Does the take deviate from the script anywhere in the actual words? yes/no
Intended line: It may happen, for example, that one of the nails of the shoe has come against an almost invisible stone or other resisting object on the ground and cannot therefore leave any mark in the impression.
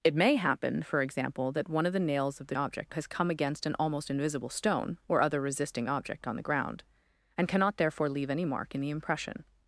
yes